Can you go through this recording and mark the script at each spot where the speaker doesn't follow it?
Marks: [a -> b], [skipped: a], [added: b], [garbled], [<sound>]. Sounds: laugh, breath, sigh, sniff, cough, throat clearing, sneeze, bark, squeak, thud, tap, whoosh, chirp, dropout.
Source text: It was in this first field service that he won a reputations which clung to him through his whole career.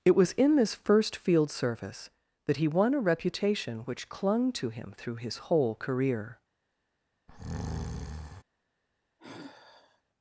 It was in this first field service that he won a [reputations -> reputation] which clung to him through his whole career. [breath] [sigh]